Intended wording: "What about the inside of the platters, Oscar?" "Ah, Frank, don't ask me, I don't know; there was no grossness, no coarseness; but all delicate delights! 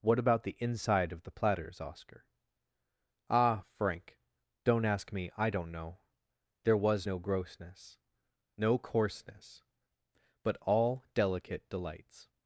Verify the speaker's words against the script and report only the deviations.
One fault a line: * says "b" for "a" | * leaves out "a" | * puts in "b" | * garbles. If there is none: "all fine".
all fine